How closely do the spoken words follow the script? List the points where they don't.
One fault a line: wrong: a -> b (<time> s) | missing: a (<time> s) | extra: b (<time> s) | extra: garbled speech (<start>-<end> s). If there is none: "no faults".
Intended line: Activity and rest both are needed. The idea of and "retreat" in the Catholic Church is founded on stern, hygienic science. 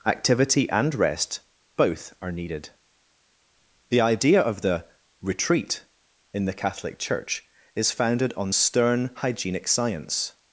wrong: and -> the (4.6 s)